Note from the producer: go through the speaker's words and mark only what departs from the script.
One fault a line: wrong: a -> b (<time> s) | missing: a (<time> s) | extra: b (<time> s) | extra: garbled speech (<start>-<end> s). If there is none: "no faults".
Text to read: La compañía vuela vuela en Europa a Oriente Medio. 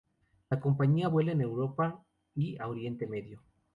missing: vuela (1.3 s)
extra: y (2.3 s)